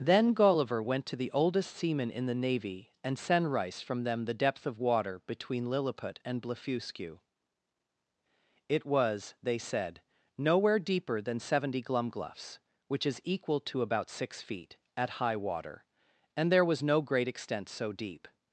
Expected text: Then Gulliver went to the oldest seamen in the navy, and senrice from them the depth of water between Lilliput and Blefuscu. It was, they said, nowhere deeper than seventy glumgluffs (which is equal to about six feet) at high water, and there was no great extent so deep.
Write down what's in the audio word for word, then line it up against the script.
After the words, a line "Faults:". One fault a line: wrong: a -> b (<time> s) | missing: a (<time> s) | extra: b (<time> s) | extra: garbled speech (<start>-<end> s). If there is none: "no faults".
Then Gulliver went to the oldest seamen in the navy, and senrice from them the depth of water between Lilliput and Blefuscu. It was, they said, nowhere deeper than seventy glumgluffs (which is equal to about six feet) at high water, and there was no great extent so deep.
Faults:
no faults